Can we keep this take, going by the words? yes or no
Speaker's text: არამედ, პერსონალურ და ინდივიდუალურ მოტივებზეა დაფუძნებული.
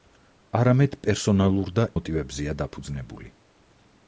no